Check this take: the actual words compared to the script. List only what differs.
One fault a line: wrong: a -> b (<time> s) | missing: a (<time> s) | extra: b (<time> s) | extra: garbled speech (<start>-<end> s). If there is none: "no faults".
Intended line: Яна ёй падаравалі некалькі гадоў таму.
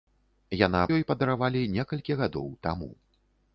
no faults